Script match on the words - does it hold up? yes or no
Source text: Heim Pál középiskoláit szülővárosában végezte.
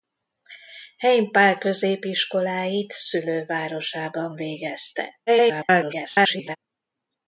no